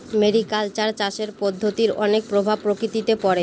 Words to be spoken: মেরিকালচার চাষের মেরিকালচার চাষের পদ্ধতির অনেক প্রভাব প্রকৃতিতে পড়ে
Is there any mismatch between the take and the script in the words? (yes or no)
yes